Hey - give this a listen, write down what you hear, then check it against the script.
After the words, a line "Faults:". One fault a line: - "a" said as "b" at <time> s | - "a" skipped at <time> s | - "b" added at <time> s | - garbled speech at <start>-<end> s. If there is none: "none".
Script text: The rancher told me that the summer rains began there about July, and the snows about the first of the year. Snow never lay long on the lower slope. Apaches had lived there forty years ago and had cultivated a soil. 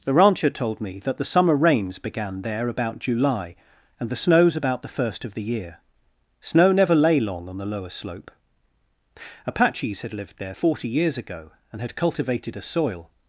The rancher told me that the summer rains began there about July, and the snows about the first of the year. Snow never lay long on the lower slope. Apaches had lived there forty years ago and had cultivated a soil.
Faults:
none